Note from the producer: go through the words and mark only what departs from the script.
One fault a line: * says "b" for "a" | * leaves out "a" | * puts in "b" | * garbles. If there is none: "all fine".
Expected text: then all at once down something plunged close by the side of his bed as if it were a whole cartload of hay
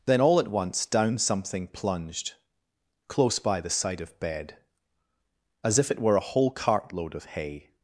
* leaves out "his"